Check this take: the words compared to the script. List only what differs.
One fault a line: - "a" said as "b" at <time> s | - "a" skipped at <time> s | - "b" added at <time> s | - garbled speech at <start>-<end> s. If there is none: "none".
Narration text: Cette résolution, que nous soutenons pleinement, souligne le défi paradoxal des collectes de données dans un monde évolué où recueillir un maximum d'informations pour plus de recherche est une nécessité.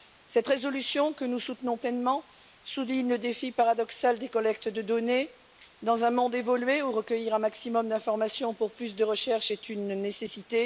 none